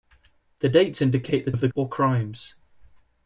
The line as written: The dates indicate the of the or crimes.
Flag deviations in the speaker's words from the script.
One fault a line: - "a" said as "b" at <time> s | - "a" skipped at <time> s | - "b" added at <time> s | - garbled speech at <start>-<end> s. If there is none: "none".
none